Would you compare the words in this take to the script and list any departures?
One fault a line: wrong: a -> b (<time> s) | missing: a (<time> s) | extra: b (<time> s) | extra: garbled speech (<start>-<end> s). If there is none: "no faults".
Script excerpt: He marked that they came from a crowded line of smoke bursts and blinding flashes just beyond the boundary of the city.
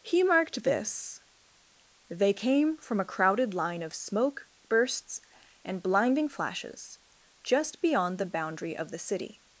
wrong: that -> this (0.6 s)